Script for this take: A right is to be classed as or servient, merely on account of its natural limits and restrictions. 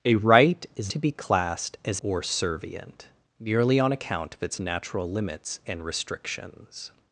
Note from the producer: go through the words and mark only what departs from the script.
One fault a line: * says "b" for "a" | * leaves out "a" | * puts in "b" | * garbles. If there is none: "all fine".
all fine